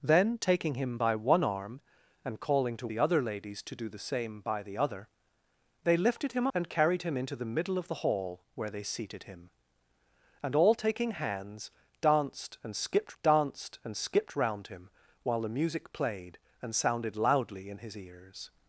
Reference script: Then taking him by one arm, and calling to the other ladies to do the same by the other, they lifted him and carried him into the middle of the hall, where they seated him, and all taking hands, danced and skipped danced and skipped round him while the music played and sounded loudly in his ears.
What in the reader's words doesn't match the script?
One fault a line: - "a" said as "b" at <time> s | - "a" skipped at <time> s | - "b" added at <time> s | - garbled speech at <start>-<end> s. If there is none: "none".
none